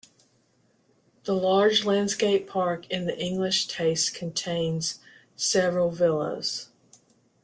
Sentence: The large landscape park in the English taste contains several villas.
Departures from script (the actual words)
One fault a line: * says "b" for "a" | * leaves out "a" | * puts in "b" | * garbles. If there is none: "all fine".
all fine